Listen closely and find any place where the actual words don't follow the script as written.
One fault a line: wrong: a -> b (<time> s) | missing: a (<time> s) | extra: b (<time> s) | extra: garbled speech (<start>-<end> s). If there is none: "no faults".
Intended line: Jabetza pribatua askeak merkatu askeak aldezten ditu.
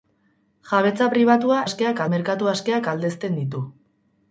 no faults